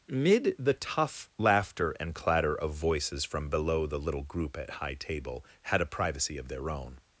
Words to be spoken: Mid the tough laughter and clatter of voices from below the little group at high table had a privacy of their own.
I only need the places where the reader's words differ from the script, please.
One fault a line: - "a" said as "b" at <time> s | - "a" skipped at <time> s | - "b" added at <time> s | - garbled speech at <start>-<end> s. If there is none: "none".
none